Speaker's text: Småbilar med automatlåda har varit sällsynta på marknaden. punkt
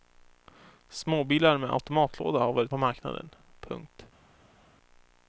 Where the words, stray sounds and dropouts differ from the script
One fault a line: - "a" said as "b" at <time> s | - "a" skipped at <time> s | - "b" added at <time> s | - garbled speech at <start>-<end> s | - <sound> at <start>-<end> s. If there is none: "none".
- "sällsynta" skipped at 2.7 s